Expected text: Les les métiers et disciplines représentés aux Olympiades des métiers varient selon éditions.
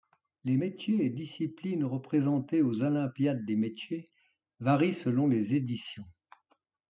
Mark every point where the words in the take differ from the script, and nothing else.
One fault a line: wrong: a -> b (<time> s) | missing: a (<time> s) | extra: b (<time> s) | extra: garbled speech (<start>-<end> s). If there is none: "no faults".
missing: les (0.6 s)
extra: les (5.3 s)